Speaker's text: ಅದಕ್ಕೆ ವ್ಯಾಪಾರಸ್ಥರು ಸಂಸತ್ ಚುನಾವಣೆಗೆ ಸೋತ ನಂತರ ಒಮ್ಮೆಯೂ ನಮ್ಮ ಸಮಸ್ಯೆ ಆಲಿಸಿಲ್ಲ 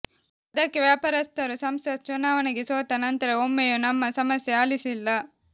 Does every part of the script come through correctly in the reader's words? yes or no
yes